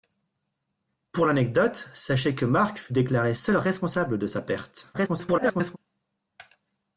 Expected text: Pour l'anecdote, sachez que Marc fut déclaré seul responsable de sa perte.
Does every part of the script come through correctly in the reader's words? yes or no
no